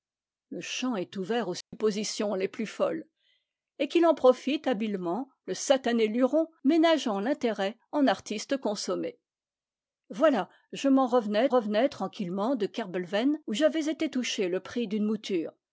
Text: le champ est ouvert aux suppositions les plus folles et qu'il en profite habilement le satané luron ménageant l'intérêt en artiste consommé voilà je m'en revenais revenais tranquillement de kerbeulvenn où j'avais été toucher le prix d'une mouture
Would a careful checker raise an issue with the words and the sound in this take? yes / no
yes